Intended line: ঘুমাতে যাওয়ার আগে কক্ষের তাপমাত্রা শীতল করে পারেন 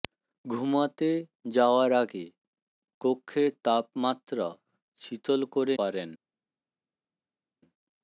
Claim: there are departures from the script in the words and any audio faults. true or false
false